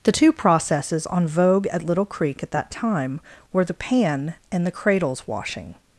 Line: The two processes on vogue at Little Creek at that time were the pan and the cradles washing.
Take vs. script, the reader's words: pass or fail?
pass